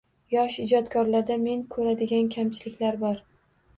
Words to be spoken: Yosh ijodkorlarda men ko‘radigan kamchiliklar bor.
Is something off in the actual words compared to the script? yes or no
no